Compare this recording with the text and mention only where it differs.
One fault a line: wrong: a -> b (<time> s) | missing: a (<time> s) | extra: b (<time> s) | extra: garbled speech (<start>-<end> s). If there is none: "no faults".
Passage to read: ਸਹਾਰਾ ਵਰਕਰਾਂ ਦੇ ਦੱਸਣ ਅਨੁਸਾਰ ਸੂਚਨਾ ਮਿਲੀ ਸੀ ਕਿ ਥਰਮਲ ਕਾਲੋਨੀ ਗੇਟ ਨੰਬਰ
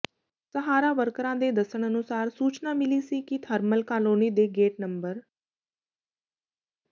extra: ਦੇ (4.3 s)